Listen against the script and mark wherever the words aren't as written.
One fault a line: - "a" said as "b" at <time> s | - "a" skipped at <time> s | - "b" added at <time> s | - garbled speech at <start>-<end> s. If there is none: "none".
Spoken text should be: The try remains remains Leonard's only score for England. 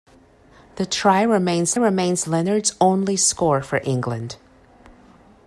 none